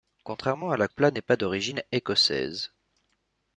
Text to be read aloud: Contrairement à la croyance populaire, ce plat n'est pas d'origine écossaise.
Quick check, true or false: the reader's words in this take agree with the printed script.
false